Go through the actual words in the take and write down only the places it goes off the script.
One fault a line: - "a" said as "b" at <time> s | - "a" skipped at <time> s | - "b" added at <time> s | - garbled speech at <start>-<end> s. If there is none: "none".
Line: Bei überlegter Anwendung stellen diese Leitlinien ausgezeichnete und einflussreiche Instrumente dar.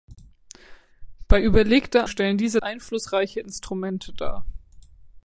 - "Anwendung" skipped at 2.1 s
- "Leitlinien ausgezeichnete und" skipped at 2.6 s